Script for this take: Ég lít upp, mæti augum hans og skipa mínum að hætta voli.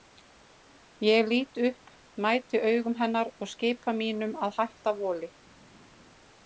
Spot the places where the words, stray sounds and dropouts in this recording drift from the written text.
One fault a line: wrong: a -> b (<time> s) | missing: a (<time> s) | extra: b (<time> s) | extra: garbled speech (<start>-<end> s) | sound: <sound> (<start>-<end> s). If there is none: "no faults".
wrong: hans -> hennar (3.0 s)